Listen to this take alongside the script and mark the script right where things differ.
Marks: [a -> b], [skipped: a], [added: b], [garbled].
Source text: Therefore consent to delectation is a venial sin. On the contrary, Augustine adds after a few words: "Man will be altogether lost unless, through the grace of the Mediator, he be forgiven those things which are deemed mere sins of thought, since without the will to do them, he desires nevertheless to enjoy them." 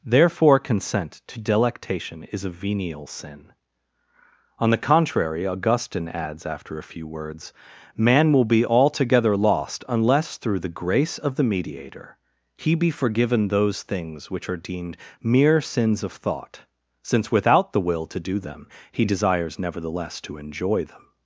Therefore consent to delectation is a venial sin. On the contrary, Augustine adds after a few words: "Man will be altogether lost unless, through the grace of the Mediator, he be forgiven those things which are deemed mere sins of thought, since without the will to do them, he desires nevertheless to enjoy them."